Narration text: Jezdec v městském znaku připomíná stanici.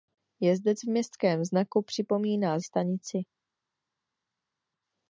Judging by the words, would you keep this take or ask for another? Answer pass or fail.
pass